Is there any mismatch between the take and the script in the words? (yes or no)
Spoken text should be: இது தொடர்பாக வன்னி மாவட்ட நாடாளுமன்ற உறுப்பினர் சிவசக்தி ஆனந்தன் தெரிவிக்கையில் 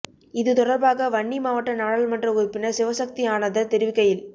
no